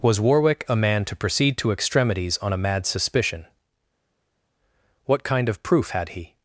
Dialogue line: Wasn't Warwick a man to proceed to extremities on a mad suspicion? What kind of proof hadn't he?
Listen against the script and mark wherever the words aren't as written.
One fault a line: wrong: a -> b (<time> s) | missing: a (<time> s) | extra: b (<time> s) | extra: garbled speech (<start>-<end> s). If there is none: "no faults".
wrong: Wasn't -> Was (0.0 s)
wrong: hadn't -> had (5.9 s)